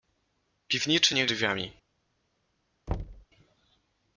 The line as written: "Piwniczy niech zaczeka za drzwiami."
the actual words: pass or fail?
fail